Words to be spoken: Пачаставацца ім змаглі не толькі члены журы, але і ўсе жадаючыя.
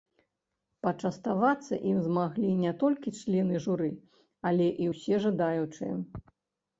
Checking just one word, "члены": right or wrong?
right